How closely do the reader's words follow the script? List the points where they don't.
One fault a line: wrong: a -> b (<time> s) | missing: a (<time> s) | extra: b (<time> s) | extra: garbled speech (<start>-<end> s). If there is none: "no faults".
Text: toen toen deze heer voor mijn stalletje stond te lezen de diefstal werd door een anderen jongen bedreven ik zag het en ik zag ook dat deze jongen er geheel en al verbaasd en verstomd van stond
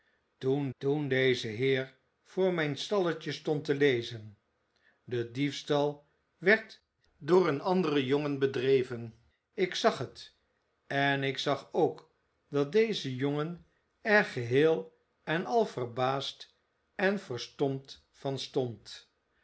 no faults